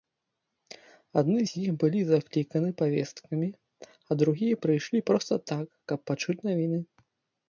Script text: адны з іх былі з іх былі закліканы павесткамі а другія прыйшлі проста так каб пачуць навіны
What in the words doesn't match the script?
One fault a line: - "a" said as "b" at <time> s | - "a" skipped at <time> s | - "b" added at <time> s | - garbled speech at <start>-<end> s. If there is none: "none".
- "з іх былі" skipped at 2.0 s